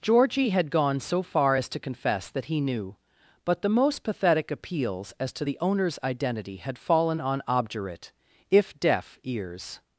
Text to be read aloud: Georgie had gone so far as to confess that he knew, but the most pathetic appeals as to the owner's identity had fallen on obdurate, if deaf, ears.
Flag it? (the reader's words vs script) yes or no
no